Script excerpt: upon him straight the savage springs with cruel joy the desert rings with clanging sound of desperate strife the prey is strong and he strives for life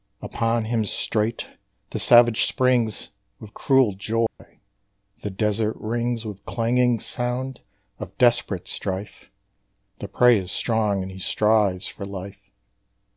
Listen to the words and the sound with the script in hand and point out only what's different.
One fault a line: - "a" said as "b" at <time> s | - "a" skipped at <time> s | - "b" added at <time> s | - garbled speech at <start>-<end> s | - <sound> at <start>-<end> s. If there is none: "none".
- dropout at 4.3-4.4 s